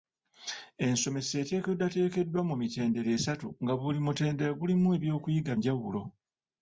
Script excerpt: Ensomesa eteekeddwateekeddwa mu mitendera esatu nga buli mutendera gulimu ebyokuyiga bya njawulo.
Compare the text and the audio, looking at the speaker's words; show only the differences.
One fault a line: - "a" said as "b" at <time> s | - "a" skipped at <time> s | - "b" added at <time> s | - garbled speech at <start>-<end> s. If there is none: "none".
- "bya" skipped at 5.5 s